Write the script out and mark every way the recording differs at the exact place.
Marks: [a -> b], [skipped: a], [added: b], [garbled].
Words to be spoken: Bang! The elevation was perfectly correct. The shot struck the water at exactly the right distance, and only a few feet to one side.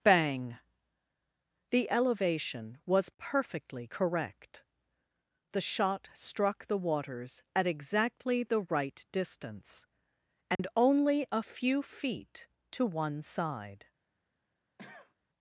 Bang! The elevation was perfectly correct. The shot struck the [water -> waters] at exactly the right distance, and only a few feet to one side.